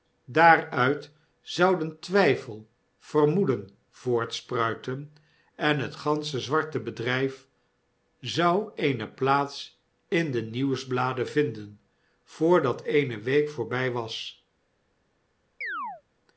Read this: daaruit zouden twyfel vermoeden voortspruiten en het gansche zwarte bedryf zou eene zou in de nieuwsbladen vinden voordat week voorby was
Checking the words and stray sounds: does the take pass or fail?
fail